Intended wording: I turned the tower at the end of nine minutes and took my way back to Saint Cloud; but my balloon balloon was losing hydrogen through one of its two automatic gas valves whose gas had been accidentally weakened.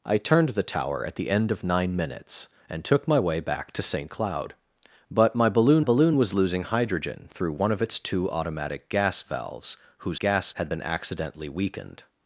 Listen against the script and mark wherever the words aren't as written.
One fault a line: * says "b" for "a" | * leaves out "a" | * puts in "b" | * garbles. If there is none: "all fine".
all fine